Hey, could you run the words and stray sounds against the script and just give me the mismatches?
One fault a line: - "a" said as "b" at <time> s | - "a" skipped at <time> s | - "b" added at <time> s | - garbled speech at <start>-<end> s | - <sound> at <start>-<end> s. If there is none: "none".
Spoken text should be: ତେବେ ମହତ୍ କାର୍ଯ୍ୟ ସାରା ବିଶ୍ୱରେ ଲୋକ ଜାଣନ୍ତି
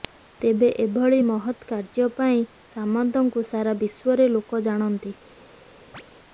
- "ଏଭଳି" added at 0.8 s
- "ପାଇଁ ସାମନ୍ତଙ୍କୁ" added at 2.2 s
- chirp at 5.9-6.0 s